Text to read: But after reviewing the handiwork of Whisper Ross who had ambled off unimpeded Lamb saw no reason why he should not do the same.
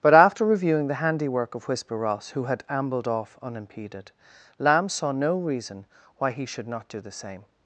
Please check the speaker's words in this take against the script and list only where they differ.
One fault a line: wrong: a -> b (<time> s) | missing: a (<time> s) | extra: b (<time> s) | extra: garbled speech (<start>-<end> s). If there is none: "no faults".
no faults